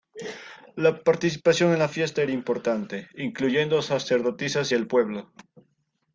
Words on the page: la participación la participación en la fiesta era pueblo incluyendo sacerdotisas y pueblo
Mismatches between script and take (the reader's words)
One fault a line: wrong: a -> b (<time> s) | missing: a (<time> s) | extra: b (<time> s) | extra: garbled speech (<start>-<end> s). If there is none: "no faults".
missing: la participación (1.7 s)
wrong: pueblo -> importante (2.3 s)
extra: el (4.7 s)